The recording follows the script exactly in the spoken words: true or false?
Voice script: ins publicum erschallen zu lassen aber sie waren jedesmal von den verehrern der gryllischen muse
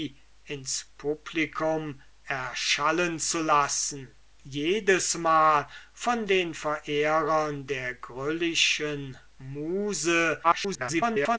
false